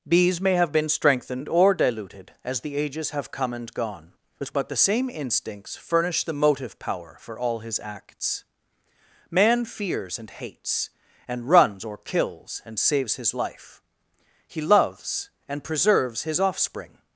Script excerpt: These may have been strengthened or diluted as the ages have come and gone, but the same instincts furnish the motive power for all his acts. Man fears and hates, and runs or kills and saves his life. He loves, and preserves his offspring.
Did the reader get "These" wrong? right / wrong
wrong